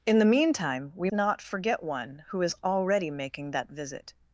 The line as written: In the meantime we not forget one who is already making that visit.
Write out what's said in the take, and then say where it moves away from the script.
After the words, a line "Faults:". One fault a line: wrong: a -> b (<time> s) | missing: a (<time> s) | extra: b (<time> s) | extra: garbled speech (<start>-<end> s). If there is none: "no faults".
In the meantime we not forget one who is already making that visit.
Faults:
no faults